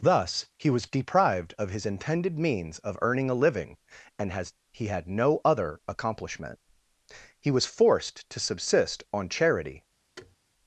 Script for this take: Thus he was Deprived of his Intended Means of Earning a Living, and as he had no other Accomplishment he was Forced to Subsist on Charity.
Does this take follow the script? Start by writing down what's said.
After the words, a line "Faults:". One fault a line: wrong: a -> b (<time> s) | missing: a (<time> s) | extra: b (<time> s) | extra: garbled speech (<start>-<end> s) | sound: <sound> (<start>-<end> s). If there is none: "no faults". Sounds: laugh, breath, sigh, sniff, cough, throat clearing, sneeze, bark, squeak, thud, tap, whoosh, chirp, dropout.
Thus he was Deprived of his Intended Means of Earning a Living, and has he had no other Accomplishment he was Forced to Subsist on Charity.
Faults:
wrong: as -> has (4.3 s)
sound: thud (10.2-10.4 s)